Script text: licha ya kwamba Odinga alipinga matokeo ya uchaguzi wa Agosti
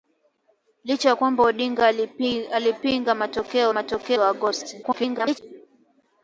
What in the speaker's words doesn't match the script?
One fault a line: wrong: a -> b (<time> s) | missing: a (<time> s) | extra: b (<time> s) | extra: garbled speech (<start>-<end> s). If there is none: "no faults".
wrong: uchaguzi -> matokeo (3.7 s)
extra: garbled speech (4.8-5.4 s)